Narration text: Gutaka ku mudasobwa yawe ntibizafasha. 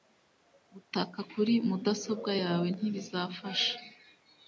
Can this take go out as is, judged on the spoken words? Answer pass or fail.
fail